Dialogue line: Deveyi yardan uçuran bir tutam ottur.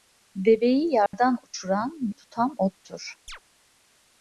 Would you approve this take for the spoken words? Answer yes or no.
no